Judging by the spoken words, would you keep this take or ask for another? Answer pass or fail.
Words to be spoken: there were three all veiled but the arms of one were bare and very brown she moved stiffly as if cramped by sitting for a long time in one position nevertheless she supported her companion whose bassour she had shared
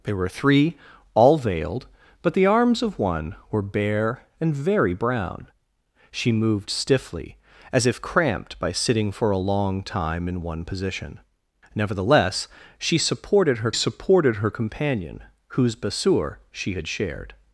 fail